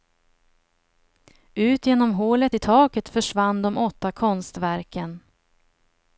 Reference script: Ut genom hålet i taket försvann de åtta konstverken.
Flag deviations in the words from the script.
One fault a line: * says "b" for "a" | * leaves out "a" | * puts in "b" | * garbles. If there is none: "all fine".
all fine